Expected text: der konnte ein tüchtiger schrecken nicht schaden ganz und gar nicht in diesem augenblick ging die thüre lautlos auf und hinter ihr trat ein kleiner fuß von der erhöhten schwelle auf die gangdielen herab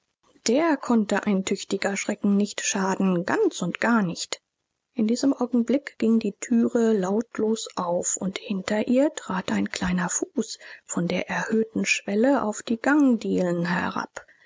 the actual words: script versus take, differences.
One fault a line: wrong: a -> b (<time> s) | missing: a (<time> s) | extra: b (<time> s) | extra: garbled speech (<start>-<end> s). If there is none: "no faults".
no faults